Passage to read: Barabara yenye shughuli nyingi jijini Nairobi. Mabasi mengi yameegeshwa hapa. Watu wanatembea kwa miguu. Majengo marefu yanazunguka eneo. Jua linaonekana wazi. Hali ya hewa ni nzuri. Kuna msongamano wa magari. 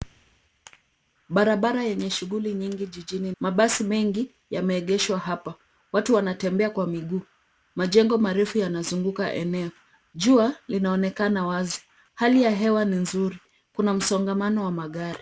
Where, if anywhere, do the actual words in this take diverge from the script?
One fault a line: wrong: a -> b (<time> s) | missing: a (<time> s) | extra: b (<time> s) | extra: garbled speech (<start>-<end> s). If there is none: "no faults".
missing: Nairobi (3.3 s)